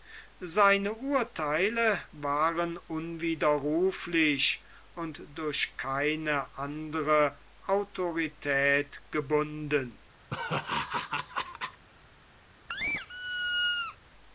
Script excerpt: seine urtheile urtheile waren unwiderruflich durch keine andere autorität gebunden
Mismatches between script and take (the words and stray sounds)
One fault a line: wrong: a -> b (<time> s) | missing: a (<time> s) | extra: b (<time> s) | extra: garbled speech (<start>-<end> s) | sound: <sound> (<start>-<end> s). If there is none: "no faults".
missing: urtheile (2.0 s)
extra: und (5.0 s)
sound: laugh (10.3-11.8 s)
sound: squeak (12.7-14.0 s)